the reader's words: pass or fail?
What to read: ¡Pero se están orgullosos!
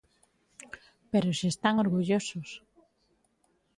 pass